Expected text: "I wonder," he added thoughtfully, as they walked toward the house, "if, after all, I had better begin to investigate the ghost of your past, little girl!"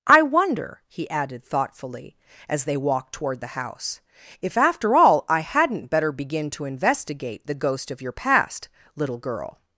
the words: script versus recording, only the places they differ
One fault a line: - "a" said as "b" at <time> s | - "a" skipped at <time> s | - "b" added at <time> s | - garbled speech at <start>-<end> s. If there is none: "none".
- "had" said as "hadn't" at 5.4 s